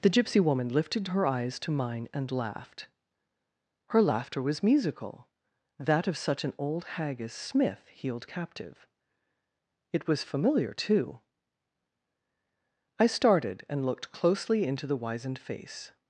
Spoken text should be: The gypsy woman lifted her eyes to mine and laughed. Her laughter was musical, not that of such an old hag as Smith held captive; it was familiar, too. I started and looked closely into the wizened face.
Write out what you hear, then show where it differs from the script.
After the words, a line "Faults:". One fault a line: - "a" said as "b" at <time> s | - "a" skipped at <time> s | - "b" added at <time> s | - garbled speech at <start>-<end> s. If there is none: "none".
The gypsy woman lifted her eyes to mine and laughed. Her laughter was musical, that of such an old hag as Smith healed captive; it was familiar, too. I started and looked closely into the wizened face.
Faults:
- "not" skipped at 5.3 s
- "held" said as "healed" at 7.9 s